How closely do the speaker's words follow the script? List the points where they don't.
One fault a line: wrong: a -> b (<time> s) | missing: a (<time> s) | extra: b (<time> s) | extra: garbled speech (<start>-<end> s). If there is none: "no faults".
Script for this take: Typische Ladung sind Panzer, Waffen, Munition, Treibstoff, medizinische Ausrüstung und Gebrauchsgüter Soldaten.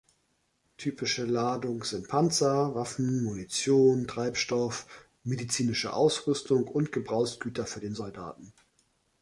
extra: für den (7.6 s)